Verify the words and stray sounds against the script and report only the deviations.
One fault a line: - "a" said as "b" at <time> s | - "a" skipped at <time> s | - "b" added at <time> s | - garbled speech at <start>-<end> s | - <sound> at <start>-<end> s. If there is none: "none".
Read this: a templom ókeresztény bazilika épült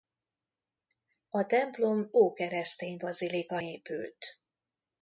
none